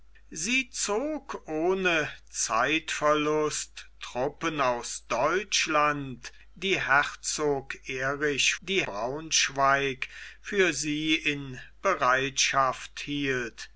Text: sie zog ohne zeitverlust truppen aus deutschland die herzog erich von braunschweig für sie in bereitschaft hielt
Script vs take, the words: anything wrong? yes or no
yes